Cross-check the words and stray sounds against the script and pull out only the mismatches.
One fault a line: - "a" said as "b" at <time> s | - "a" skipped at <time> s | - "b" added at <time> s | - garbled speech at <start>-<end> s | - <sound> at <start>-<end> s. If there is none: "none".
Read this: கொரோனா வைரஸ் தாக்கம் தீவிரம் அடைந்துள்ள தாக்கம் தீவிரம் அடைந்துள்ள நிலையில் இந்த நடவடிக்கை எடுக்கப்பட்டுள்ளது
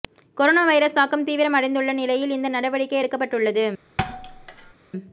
- "தாக்கம் தீவிரம் அடைந்துள்ள" skipped at 1.9 s
- thud at 4.0-4.7 s